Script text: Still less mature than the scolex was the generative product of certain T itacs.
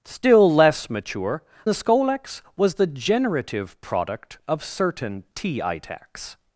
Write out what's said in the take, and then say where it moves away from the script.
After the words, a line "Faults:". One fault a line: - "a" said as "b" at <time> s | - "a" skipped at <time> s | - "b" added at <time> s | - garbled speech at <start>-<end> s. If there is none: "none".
Still less mature the scolex was the generative product of certain T itacs.
Faults:
- "than" skipped at 1.4 s